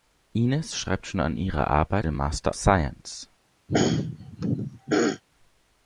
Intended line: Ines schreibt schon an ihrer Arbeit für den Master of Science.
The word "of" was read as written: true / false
false